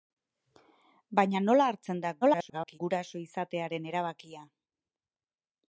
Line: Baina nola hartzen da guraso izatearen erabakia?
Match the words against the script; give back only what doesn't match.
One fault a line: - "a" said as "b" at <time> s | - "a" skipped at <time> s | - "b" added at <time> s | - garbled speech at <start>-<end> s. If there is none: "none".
- garbled speech at 2.2-2.8 s